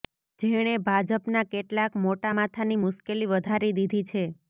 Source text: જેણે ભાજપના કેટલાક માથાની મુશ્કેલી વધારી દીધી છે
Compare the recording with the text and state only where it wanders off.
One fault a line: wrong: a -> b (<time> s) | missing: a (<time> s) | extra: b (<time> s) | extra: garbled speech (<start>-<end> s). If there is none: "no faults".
extra: મોટા (2.0 s)